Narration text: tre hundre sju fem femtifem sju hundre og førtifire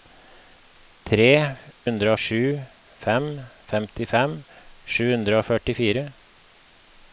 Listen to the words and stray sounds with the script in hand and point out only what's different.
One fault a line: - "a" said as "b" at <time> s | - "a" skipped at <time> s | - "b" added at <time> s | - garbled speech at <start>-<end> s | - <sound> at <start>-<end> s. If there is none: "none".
none